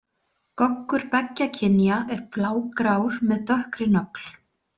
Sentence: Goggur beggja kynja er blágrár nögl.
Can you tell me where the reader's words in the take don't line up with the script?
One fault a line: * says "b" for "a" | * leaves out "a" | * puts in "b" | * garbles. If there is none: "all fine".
* puts in "með dökkri"